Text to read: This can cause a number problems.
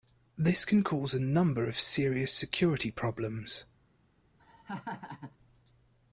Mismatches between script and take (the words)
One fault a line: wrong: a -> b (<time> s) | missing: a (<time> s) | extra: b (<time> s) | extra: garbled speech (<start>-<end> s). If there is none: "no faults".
extra: of serious security (1.7 s)